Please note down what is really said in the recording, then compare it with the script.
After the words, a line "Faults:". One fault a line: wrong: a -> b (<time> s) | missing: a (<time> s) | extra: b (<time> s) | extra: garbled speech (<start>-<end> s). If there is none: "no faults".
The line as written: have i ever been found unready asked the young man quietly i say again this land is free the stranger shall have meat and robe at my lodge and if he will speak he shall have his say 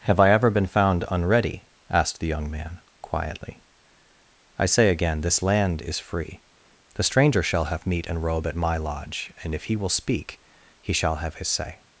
have i ever been found unready asked the young man quietly i say again this land is free the stranger shall have meat and robe at my lodge and if he will speak he shall have his say
Faults:
no faults